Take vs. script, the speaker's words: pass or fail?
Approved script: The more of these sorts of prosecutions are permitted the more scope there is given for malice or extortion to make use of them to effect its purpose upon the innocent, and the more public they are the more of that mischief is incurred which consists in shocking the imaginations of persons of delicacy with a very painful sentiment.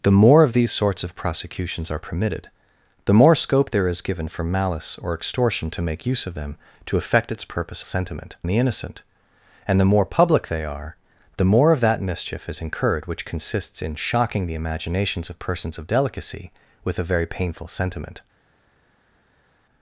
fail